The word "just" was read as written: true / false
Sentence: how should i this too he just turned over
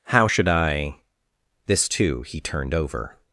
false